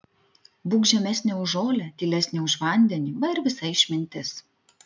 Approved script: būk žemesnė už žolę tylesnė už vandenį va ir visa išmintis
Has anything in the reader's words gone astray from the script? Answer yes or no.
no